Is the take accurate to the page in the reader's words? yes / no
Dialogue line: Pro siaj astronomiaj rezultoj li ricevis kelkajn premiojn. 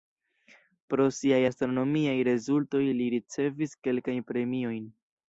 yes